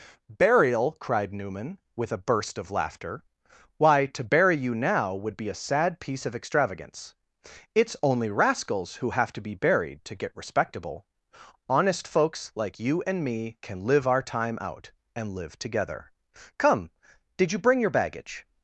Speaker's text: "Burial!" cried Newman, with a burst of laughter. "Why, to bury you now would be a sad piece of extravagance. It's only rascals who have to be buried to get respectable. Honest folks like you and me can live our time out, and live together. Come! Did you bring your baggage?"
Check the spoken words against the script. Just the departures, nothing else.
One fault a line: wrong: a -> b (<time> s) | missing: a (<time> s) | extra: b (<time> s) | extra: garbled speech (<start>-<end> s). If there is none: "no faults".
no faults